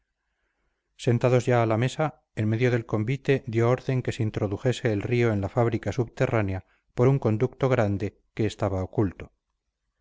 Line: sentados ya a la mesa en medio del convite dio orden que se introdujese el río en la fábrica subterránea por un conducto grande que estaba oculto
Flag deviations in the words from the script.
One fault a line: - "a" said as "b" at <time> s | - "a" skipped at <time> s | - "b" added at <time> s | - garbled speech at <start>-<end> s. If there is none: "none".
none